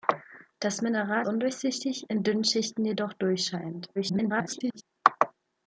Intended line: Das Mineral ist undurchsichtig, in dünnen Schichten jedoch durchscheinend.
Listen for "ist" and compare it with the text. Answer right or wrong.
wrong